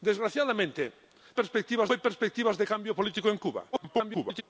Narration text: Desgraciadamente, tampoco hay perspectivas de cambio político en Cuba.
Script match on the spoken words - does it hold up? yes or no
no